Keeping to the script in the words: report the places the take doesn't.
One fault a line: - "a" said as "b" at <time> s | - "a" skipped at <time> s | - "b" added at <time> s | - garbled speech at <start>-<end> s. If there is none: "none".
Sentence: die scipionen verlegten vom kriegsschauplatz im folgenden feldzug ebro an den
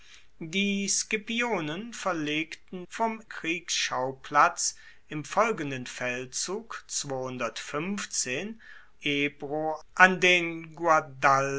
none